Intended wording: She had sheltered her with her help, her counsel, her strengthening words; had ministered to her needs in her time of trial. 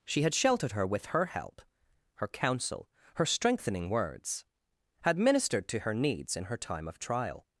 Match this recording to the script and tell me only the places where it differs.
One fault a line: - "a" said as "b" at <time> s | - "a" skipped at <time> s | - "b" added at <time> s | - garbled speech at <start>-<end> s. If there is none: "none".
none